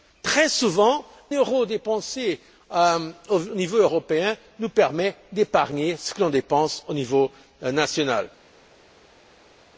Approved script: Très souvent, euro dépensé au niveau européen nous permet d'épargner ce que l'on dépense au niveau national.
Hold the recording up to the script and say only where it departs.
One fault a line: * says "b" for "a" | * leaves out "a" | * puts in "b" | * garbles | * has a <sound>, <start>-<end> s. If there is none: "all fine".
all fine